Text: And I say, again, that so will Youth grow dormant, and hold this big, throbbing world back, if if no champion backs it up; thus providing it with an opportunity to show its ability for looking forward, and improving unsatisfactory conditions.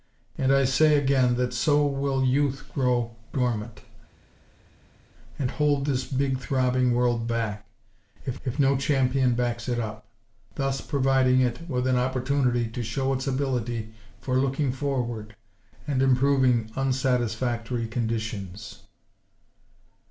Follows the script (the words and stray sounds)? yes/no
yes